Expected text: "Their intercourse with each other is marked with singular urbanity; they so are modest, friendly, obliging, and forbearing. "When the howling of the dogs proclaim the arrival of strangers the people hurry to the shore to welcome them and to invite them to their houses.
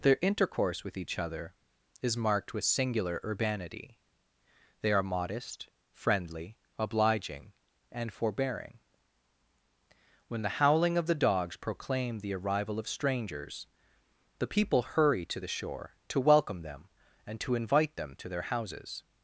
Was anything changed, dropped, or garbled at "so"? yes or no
yes